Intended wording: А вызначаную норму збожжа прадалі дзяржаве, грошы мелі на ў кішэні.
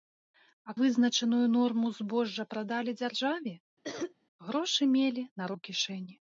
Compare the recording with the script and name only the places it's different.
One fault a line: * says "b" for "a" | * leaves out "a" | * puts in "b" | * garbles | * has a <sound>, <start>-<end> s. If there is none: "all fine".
* has a cough, 3.8-4.1 s